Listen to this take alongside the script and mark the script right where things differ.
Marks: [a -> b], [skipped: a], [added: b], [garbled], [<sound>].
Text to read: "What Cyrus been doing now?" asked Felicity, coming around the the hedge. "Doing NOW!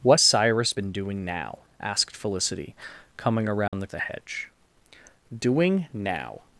"What Cyrus been doing now?" asked Felicity, coming around [dropout] the the hedge. "Doing NOW!